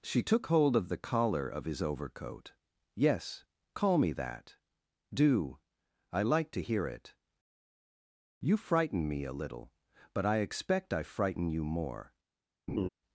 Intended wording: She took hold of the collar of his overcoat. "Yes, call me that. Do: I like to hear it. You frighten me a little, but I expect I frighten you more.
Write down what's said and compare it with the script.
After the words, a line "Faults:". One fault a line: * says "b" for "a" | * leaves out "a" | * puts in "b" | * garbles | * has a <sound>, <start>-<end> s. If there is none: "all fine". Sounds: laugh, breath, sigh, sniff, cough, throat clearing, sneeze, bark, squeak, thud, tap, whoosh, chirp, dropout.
She took hold of the collar of his overcoat. "Yes, call me that. Do: I like to hear it. You frighten me a little, but I expect I frighten you more.
Faults:
* has a laugh, 12.7-12.9 s